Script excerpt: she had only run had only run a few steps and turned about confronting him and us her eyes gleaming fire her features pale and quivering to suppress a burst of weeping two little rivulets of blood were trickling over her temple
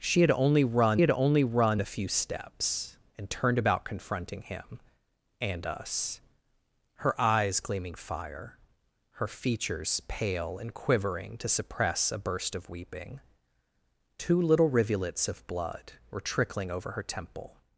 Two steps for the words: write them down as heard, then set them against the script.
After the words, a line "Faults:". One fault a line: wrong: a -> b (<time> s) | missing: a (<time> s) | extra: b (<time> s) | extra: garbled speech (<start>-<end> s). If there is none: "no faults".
she had only run had only run a few steps and turned about confronting him and us her eyes gleaming fire her features pale and quivering to suppress a burst of weeping two little rivulets of blood were trickling over her temple
Faults:
no faults